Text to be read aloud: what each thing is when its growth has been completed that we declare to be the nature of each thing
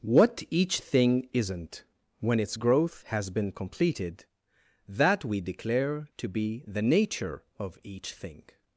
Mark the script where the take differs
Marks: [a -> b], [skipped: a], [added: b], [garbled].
what each thing [is -> isn't] when its growth has been completed that we declare to be the nature of each thing